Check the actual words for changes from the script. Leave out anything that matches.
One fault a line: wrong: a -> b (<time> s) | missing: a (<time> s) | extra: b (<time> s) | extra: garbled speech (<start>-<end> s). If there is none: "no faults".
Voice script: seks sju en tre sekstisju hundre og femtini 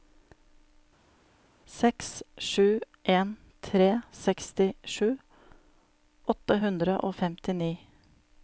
extra: åtte (6.3 s)